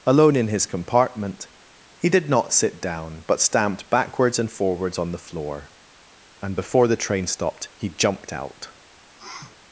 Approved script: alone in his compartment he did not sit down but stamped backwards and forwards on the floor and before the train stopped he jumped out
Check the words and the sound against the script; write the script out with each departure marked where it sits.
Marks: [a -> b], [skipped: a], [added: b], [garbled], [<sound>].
alone in his compartment he did not sit down but stamped backwards and forwards on the floor and before the train stopped he jumped out [sniff]